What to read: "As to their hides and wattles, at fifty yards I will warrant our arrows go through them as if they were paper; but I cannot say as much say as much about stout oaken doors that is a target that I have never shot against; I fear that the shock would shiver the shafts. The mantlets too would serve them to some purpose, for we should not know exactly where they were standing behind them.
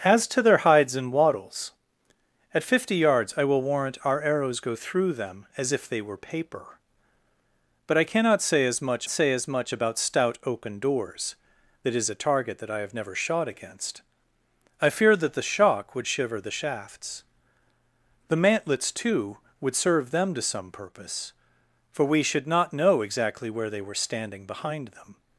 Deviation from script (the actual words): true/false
false